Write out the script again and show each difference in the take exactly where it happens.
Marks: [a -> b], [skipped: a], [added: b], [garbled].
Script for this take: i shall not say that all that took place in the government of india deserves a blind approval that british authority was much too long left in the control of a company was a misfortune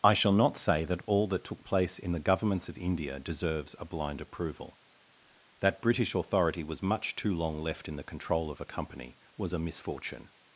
i shall not say that all that took place in the [government -> governments] of india deserves a blind approval that british authority was much too long left in the control of a company was a misfortune